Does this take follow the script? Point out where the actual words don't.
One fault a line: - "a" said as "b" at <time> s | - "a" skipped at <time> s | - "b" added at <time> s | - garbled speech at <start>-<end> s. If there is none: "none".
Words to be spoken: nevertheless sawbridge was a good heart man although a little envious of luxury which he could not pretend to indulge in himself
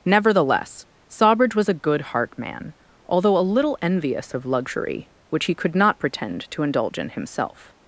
none